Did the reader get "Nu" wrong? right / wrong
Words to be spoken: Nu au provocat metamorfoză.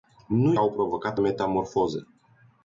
right